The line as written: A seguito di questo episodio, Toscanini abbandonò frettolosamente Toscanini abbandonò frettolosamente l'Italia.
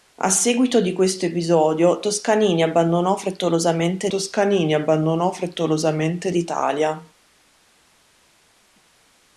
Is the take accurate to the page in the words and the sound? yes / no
yes